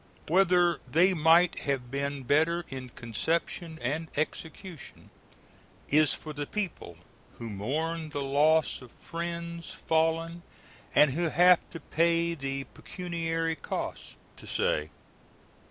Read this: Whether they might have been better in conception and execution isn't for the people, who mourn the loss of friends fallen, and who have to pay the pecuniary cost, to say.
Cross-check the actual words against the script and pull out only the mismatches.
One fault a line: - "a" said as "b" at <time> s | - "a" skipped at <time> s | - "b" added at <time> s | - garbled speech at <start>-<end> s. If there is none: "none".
- "isn't" said as "is" at 5.9 s